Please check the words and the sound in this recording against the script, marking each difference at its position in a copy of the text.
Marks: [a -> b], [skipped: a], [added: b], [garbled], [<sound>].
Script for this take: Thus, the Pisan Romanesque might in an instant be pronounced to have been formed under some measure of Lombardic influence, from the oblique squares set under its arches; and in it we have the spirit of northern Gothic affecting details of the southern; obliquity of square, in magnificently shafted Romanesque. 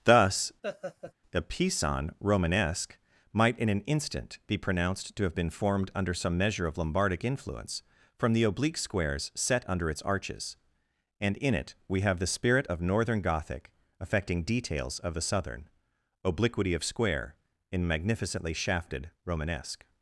Thus, [laugh] [the -> a] Pisan Romanesque might in an instant be pronounced to have been formed under some measure of Lombardic influence, from the oblique squares set under its arches; and in it we have the spirit of northern Gothic affecting details of the southern; obliquity of square, in magnificently shafted Romanesque.